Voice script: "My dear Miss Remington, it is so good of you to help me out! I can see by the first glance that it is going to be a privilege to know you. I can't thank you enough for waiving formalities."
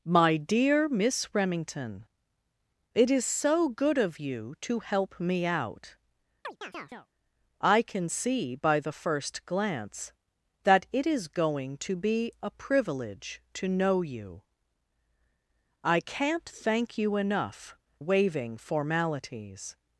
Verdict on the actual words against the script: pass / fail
fail